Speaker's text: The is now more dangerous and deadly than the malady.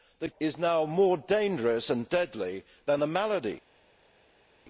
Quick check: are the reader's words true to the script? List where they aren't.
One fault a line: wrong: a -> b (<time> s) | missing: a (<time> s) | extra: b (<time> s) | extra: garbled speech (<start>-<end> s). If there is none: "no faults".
no faults